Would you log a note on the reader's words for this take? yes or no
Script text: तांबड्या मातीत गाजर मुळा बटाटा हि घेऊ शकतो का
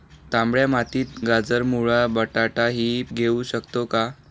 no